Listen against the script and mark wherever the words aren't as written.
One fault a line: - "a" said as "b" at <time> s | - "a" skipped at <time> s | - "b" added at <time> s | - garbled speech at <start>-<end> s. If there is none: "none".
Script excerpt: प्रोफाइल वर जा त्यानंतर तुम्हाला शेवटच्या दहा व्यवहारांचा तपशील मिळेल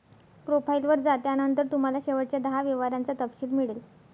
none